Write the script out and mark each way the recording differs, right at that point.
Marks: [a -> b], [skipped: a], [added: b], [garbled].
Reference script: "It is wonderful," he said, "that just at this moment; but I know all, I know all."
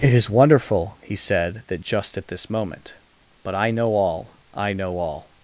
"It is wonderful," he said, "that just at this moment; but I know all, I know all."